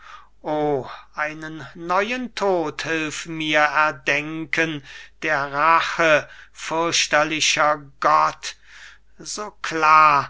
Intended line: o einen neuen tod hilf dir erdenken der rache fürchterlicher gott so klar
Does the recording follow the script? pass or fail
fail